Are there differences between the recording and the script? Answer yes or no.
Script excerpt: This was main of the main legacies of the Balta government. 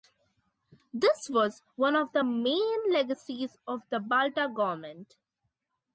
yes